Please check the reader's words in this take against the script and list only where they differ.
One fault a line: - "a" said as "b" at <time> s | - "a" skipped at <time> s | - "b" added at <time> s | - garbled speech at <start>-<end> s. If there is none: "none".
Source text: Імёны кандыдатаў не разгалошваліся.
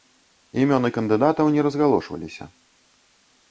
none